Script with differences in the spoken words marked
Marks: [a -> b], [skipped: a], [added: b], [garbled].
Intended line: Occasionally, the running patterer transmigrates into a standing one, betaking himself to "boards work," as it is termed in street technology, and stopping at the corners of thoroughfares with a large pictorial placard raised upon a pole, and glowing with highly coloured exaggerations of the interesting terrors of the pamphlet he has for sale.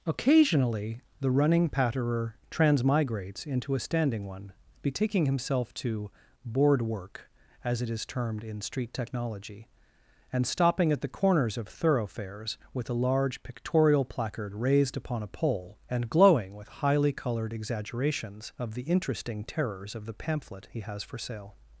Occasionally, the running patterer transmigrates into a standing one, betaking himself to ["boards -> board] work," as it is termed in street technology, and stopping at the corners of thoroughfares with a large pictorial placard raised upon a pole, and glowing with highly coloured exaggerations of the interesting terrors of the pamphlet he has for sale.